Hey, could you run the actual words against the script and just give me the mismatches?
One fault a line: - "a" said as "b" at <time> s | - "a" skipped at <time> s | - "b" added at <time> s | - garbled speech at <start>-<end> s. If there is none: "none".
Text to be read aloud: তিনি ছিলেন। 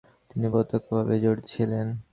- "প্রত্যক্ষভাবে জড়িত" added at 0.5 s